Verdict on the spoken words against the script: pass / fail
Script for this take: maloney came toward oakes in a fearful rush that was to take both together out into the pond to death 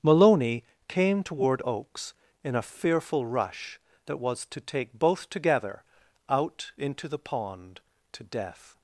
pass